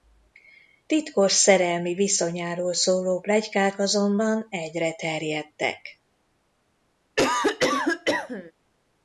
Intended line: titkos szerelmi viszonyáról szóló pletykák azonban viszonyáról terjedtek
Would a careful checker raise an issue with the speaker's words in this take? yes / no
yes